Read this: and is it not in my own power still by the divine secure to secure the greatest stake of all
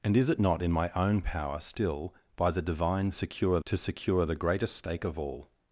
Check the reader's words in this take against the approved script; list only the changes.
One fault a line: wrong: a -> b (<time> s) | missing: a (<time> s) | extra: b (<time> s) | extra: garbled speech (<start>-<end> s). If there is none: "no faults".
no faults